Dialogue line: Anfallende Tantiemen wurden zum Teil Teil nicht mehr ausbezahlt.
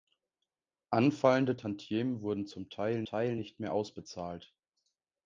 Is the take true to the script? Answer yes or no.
yes